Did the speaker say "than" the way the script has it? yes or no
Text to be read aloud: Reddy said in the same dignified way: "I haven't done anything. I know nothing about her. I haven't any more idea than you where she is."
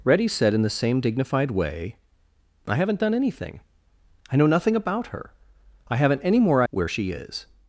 no